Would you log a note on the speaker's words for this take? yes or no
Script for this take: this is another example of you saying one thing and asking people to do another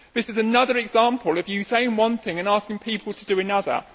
no